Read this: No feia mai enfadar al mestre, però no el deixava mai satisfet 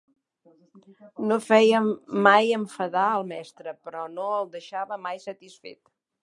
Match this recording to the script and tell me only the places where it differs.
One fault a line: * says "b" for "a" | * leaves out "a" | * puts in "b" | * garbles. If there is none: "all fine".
all fine